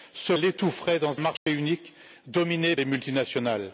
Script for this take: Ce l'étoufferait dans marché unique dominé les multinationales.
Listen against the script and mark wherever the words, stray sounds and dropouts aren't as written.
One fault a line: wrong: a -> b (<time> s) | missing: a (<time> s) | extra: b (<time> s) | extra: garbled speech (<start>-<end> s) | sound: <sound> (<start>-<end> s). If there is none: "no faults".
sound: dropout (1.4-1.5 s)